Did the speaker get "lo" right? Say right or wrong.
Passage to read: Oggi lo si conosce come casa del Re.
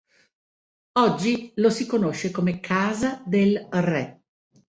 right